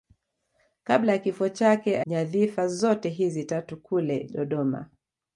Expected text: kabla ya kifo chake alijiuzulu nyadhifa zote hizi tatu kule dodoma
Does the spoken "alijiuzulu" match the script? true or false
false